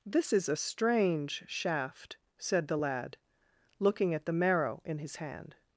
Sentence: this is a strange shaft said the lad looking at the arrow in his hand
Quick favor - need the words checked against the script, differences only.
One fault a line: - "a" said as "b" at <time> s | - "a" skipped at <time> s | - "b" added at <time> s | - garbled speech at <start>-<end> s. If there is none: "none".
- "arrow" said as "marrow" at 4.3 s